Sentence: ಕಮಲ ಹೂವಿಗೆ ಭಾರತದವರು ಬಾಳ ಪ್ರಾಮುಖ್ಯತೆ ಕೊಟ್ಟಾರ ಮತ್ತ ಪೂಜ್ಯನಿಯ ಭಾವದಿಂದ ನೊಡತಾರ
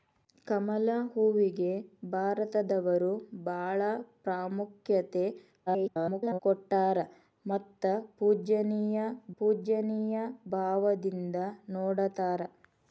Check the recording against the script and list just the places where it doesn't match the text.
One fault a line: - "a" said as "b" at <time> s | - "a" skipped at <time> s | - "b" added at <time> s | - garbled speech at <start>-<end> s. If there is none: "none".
- garbled speech at 5.7-6.4 s
- "ಪೂಜ್ಯನಿಯ" added at 9.4 s